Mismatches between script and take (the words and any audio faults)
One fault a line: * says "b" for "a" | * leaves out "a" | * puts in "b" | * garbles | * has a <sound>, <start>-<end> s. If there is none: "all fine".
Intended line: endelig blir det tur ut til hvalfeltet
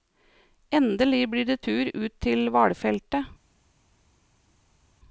all fine